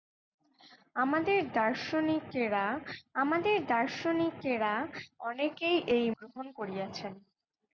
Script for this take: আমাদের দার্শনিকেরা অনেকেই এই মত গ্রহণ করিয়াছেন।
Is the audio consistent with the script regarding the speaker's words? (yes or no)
no